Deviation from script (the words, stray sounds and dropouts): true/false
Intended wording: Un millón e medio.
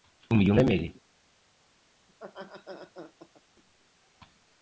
true